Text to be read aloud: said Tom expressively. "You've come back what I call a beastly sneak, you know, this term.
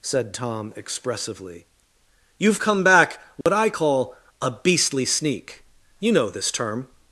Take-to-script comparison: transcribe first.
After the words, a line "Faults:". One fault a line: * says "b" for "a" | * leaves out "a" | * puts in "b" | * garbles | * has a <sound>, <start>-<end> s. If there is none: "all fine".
said Tom expressively. "You've come back what I call a beastly sneak, you know, this term.
Faults:
* has a dropout, 3.4-3.5 s